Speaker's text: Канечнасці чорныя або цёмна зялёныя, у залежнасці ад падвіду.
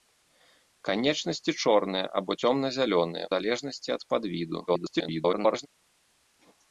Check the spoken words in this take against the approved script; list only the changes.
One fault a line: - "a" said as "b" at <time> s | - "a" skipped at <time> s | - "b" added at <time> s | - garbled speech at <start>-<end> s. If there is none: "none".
- "у" skipped at 3.3 s
- garbled speech at 4.7-5.7 s